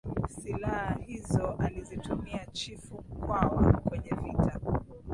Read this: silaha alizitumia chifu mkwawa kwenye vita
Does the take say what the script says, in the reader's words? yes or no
no